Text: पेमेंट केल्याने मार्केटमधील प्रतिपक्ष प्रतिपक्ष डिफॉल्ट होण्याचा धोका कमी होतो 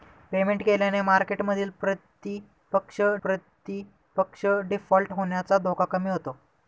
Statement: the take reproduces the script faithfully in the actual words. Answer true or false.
true